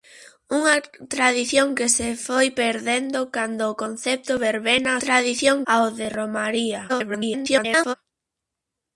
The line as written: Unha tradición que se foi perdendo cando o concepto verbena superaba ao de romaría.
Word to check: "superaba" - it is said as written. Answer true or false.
false